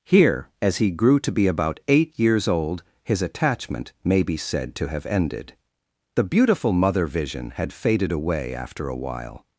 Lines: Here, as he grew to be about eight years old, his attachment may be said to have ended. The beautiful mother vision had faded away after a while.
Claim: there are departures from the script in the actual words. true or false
false